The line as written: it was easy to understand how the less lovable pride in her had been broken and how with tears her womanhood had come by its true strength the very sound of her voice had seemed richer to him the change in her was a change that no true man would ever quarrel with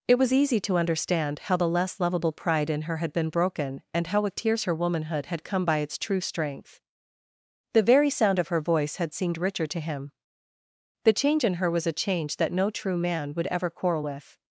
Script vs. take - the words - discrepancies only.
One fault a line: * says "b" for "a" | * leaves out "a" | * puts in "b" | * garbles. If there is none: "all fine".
all fine